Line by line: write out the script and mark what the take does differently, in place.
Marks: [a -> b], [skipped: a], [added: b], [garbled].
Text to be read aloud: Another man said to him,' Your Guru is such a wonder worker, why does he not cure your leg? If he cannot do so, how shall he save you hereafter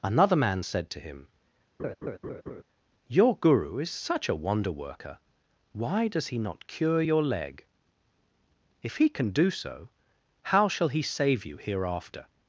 Another man said to him,' Your Guru is such a wonder worker, why does he not cure your leg? If he [cannot -> can] do so, how shall he save you hereafter